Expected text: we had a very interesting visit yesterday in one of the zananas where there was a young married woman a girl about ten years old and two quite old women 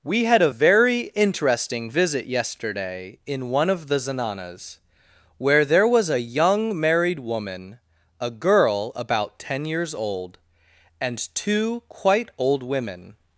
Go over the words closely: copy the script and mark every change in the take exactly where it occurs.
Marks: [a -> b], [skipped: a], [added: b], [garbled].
we had a very interesting visit yesterday in one of the zananas where there was a young married woman a girl about ten years old and two quite old women